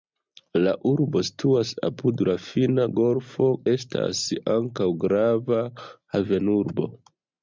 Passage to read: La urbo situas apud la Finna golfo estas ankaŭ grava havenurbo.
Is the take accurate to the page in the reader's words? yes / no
yes